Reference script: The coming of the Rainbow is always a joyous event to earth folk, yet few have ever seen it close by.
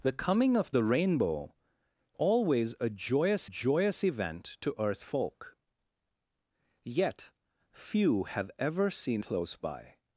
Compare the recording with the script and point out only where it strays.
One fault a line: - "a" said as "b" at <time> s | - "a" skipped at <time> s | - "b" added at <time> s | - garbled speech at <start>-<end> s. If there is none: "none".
- "is" skipped at 1.5 s
- "joyous" added at 3.4 s
- "it" skipped at 9.2 s